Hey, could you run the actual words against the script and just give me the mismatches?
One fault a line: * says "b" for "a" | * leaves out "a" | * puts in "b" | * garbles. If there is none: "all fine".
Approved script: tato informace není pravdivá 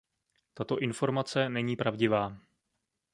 all fine